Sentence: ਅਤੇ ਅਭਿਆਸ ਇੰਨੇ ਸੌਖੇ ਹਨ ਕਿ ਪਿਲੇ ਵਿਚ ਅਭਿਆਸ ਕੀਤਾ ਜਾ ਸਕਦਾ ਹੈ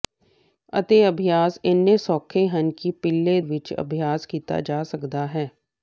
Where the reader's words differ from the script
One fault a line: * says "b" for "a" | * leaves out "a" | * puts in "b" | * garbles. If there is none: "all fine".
all fine